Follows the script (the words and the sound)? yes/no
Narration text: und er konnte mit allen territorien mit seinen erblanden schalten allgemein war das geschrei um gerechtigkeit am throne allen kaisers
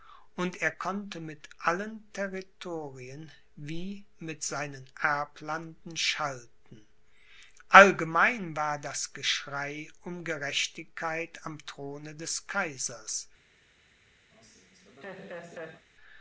no